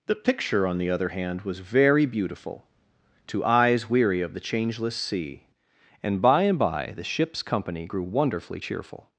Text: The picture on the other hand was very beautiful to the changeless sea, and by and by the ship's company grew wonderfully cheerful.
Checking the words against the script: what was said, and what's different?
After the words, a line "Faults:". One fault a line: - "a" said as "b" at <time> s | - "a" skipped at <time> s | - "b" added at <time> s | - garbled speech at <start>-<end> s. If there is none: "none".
The picture on the other hand was very beautiful to eyes weary of the changeless sea, and by and by the ship's company grew wonderfully cheerful.
Faults:
- "eyes weary of" added at 3.4 s